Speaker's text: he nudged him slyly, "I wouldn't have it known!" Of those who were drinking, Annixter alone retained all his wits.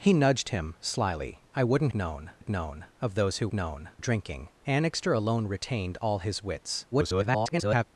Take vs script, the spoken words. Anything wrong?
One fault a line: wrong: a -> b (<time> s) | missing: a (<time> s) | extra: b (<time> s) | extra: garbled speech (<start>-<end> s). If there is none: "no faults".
wrong: have -> known (1.9 s)
wrong: were -> known (3.5 s)
extra: garbled speech (6.9-7.8 s)